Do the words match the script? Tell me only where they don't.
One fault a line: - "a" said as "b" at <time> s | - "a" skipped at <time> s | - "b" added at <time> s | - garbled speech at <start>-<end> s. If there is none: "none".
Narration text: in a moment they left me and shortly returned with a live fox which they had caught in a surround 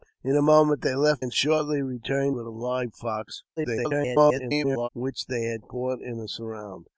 - "me" skipped at 1.2 s
- garbled speech at 3.6-4.9 s